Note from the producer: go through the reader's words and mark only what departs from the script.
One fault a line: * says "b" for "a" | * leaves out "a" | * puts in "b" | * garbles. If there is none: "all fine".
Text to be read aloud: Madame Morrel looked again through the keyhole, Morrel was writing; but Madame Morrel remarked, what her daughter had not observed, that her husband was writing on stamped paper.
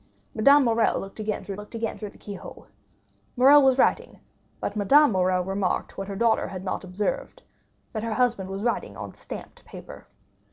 * puts in "looked again through"